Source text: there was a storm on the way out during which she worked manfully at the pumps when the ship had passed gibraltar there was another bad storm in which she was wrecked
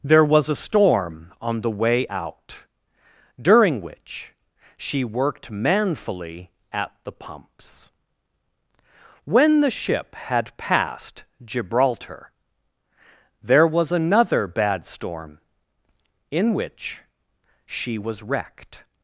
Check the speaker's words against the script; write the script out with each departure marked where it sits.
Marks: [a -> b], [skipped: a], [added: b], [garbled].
there was a storm on the way out during which she worked manfully at the pumps when the ship had passed gibraltar there was another bad storm in which she was wrecked